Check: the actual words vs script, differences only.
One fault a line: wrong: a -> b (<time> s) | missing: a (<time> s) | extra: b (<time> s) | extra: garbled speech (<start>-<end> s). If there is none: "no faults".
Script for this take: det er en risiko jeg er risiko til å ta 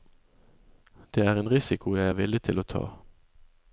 wrong: risiko -> villig (2.2 s)